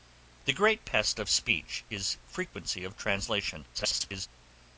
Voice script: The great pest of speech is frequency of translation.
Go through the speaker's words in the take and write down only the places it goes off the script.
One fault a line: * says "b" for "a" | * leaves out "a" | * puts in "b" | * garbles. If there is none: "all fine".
* garbles